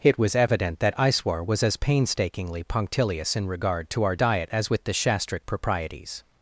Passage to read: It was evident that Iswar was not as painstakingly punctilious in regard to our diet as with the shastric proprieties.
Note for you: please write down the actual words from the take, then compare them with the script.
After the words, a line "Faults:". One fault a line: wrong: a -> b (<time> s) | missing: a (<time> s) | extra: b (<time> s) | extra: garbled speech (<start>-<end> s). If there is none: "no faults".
It was evident that Iswar was as painstakingly punctilious in regard to our diet as with the shastric proprieties.
Faults:
missing: not (1.6 s)